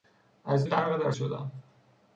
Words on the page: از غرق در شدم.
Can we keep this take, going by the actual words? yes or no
yes